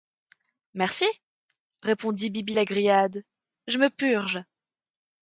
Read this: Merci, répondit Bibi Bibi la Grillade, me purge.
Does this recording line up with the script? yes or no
no